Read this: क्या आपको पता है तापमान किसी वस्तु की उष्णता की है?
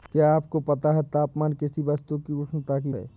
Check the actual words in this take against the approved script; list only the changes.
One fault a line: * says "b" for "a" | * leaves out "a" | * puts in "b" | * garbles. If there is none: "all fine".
all fine